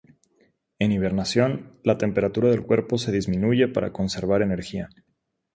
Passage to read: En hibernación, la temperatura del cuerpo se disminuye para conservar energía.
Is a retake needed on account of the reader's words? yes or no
no